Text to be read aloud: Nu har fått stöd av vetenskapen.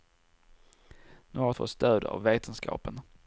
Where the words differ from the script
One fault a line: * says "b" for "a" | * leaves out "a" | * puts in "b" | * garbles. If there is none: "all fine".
all fine